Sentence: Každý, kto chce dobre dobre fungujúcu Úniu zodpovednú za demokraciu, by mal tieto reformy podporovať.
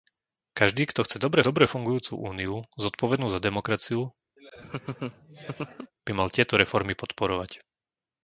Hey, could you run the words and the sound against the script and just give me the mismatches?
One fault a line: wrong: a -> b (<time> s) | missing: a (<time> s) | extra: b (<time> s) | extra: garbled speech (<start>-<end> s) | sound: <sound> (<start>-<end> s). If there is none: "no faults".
sound: laugh (4.4-5.9 s)